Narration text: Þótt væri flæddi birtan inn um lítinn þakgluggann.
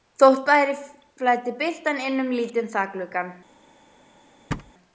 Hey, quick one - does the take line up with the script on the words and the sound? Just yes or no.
no